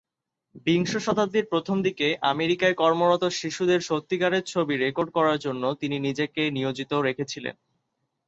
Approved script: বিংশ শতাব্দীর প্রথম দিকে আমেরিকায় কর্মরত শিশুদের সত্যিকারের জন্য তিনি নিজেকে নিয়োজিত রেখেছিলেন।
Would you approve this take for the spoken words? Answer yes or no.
no